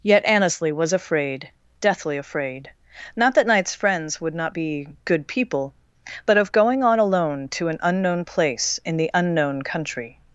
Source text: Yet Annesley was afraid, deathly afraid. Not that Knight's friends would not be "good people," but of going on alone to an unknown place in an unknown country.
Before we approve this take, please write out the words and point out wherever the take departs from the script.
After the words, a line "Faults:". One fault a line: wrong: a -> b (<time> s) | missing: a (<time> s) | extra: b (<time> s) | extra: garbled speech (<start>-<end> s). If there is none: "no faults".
Yet Annesley was afraid, deathly afraid. Not that Knight's friends would not be "good people," but of going on alone to an unknown place in the unknown country.
Faults:
wrong: an -> the (9.0 s)